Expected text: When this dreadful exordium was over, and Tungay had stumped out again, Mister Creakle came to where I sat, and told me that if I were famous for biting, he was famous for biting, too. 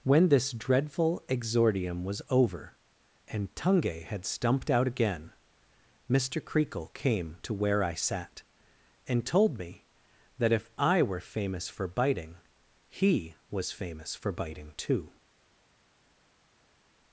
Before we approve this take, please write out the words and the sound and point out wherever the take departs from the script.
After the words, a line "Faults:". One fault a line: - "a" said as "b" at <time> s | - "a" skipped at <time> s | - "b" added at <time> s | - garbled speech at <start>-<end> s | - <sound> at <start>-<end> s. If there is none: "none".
When this dreadful exordium was over, and Tungay had stumped out again, Mister Creakle came to where I sat, and told me that if I were famous for biting, he was famous for biting, too.
Faults:
none